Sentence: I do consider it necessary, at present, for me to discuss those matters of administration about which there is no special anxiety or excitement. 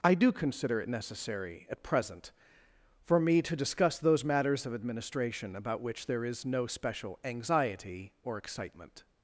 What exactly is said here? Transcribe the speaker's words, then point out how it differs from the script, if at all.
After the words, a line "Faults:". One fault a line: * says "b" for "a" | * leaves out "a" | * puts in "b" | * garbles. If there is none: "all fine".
I do consider it necessary, at present, for me to discuss those matters of administration about which there is no special anxiety or excitement.
Faults:
all fine